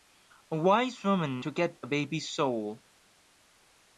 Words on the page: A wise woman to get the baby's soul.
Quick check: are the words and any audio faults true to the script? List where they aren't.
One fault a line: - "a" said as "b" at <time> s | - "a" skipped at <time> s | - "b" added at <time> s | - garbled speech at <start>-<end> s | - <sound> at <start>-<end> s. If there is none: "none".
none